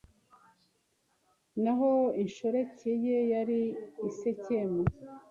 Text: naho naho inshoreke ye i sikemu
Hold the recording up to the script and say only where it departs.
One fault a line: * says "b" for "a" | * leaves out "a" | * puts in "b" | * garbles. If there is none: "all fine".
* leaves out "naho"
* puts in "yari"